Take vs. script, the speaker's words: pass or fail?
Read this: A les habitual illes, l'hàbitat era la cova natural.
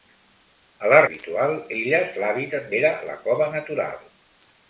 pass